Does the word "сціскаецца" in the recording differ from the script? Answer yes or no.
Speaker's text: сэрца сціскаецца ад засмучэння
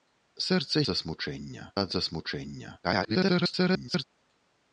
yes